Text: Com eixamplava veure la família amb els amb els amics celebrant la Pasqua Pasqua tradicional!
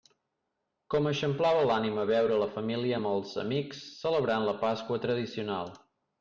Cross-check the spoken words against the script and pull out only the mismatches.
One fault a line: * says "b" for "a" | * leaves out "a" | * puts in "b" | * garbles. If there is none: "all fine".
* puts in "l'ànima"
* leaves out "amb els"
* leaves out "Pasqua"